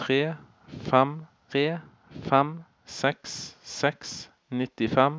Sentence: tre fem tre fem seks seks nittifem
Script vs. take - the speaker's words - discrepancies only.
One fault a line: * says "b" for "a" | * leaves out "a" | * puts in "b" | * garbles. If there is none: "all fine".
all fine